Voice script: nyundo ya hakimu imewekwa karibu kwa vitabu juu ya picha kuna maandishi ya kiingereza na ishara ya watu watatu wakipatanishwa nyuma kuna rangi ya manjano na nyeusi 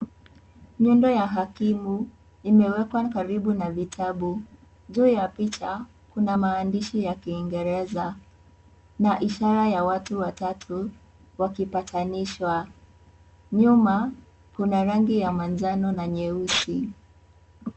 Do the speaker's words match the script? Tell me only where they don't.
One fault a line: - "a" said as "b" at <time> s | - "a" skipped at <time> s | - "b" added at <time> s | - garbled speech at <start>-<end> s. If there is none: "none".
- "kwa" said as "na" at 3.5 s